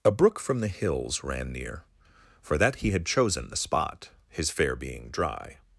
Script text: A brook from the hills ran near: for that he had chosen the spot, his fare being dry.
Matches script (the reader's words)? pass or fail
pass